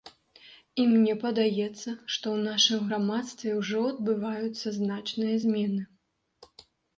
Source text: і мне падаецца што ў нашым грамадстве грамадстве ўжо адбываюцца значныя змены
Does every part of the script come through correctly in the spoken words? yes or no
no